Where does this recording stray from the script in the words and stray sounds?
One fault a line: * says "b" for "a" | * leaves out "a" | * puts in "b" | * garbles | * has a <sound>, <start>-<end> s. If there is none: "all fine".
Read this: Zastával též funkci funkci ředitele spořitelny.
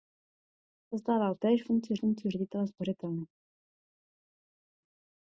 all fine